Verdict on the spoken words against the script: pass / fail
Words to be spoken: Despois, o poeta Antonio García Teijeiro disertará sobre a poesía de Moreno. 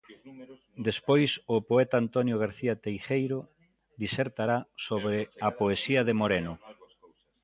pass